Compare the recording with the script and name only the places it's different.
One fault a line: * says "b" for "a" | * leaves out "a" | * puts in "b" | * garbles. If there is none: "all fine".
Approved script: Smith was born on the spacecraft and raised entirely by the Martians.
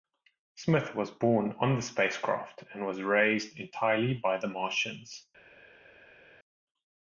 * puts in "was"